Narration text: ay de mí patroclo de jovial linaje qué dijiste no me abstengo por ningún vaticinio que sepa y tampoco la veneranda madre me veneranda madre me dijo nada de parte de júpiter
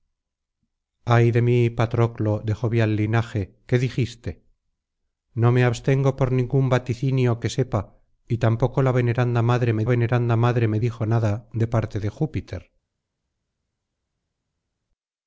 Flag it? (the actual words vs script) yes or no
no